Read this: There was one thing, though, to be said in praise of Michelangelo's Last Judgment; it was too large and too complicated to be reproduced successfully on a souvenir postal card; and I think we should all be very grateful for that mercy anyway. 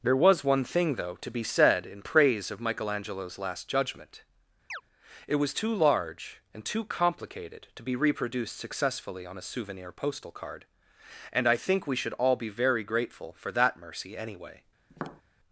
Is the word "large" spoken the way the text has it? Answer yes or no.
yes